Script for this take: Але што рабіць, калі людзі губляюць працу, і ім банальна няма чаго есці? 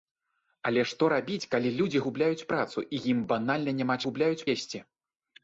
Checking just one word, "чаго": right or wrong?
wrong